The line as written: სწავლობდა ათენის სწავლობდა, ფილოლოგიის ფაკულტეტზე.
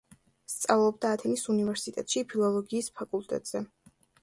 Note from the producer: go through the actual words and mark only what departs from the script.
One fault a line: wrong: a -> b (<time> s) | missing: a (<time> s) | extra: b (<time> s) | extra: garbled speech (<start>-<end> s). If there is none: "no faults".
wrong: სწავლობდა -> უნივერსიტეტში (1.6 s)